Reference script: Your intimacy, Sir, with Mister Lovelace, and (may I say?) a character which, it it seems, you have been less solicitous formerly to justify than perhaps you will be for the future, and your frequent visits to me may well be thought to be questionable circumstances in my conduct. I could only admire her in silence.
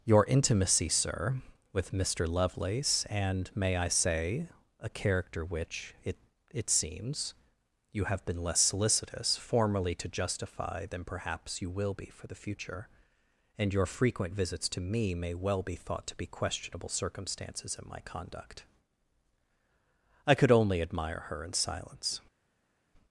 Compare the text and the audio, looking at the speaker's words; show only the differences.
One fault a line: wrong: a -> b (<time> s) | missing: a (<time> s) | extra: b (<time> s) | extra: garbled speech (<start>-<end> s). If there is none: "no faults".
no faults